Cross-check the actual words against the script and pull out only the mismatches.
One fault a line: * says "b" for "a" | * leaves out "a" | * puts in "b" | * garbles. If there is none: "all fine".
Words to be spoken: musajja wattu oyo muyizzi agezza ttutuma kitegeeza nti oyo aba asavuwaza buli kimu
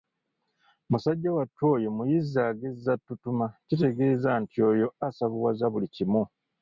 * leaves out "aba"